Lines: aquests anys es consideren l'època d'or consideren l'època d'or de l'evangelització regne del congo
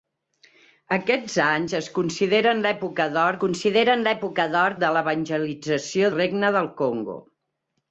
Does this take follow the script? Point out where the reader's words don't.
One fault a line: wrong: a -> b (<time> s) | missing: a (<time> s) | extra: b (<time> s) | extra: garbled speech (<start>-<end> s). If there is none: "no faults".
no faults